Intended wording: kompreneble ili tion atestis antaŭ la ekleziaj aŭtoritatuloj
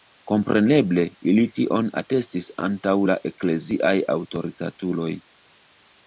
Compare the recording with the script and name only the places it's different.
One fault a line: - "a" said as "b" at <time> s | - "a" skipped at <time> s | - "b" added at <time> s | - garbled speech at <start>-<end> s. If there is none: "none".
none